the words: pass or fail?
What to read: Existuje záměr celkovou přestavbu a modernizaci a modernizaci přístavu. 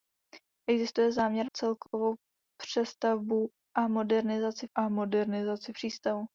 pass